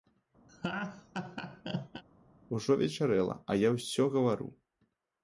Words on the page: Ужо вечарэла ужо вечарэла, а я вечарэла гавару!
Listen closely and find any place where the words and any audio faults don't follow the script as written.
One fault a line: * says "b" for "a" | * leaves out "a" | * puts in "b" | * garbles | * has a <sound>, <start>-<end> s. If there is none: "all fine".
* has a laugh, 0.5-2.0 s
* leaves out "ужо вечарэла"
* says "ўсё" for "вечарэла"